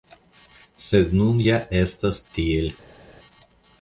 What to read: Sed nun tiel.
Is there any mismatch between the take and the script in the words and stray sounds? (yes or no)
yes